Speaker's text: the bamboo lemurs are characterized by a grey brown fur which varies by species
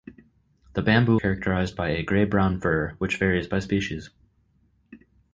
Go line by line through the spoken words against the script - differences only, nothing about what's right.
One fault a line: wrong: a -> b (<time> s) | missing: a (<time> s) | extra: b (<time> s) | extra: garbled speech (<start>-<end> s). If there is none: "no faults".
missing: lemurs are (1.2 s)